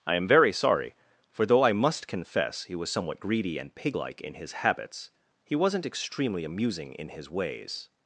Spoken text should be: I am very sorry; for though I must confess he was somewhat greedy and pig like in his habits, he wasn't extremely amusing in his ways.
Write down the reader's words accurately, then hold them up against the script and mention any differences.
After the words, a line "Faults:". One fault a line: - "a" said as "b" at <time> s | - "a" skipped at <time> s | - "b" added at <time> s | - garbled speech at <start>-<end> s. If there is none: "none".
I am very sorry; for though I must confess he was somewhat greedy and pig like in his habits, he wasn't extremely amusing in his ways.
Faults:
none